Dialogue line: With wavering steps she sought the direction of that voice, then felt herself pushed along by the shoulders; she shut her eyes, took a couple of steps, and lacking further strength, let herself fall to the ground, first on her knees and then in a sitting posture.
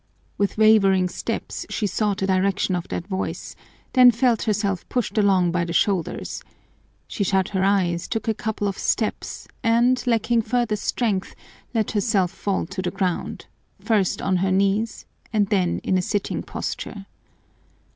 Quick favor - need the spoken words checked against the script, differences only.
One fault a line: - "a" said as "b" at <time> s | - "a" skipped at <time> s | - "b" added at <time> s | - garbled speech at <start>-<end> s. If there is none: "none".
none